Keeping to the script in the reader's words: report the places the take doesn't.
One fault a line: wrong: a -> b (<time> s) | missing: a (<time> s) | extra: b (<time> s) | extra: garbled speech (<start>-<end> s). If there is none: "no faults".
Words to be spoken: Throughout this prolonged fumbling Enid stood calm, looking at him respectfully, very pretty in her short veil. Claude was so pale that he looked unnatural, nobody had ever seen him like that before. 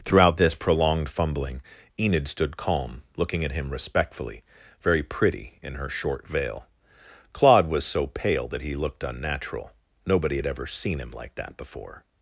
no faults